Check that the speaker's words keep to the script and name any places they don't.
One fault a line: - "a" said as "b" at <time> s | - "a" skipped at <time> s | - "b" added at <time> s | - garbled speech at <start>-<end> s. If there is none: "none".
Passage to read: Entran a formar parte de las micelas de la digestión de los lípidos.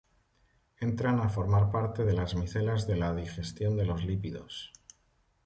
none